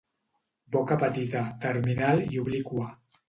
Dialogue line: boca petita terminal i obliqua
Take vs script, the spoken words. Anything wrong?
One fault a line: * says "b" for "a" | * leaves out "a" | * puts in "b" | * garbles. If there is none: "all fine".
all fine